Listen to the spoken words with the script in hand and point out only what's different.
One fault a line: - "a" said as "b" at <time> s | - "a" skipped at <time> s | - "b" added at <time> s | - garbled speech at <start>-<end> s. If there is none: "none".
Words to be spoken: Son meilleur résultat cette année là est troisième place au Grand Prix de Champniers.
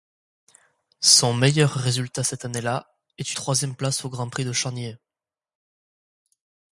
none